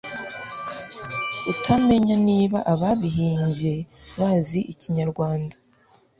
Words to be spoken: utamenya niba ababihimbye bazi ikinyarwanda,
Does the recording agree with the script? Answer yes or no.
yes